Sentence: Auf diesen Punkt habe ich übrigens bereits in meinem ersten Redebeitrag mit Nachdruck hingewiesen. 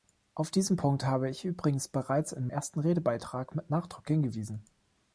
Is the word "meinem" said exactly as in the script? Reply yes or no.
no